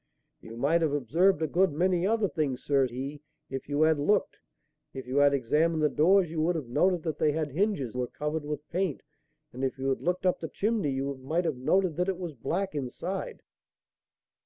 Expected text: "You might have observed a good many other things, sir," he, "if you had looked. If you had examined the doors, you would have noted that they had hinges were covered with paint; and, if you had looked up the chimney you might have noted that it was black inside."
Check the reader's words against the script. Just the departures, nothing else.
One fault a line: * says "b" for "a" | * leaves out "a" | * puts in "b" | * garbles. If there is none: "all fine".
all fine